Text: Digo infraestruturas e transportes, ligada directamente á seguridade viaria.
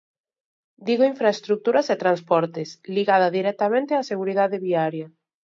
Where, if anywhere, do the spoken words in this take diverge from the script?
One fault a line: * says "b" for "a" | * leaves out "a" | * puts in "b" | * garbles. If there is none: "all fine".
all fine